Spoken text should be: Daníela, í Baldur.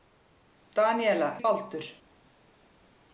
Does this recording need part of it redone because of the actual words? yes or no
no